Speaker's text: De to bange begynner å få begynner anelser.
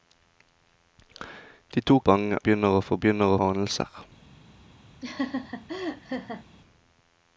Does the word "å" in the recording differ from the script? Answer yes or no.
no